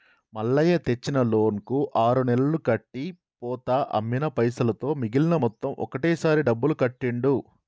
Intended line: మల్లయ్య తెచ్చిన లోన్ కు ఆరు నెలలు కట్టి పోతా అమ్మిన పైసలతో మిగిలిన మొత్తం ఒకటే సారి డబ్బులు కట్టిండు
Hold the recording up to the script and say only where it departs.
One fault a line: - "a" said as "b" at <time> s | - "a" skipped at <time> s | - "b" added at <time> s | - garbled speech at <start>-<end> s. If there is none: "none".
none